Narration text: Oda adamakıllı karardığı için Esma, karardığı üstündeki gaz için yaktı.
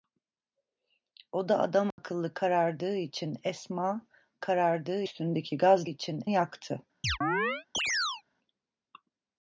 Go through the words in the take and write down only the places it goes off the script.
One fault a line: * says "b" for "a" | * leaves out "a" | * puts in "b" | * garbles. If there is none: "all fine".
all fine